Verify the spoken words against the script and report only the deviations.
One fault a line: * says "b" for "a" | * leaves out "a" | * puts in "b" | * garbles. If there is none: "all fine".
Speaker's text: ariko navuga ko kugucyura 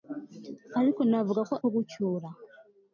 all fine